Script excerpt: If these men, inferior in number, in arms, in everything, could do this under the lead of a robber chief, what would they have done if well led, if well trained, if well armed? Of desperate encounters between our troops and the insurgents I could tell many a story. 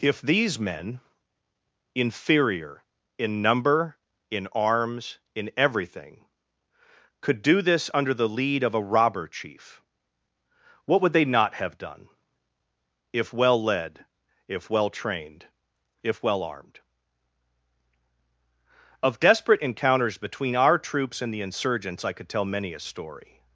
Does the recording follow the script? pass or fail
fail